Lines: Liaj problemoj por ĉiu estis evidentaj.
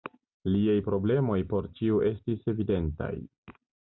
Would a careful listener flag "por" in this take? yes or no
no